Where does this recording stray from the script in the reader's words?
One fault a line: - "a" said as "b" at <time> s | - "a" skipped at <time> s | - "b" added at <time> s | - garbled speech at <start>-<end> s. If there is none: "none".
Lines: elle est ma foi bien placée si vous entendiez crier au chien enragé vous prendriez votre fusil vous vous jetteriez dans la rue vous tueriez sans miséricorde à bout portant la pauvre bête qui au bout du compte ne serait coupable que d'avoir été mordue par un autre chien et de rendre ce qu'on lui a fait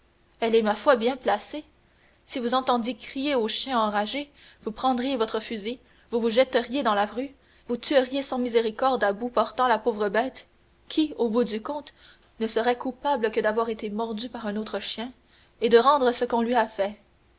none